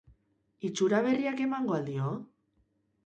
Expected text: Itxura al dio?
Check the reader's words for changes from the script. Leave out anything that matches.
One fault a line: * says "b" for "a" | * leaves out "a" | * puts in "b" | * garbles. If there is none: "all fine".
* puts in "berriak emango"